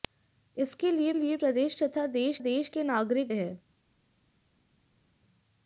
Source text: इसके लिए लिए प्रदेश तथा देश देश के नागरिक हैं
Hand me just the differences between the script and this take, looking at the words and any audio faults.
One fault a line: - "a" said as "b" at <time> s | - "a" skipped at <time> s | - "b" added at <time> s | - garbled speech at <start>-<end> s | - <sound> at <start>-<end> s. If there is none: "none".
none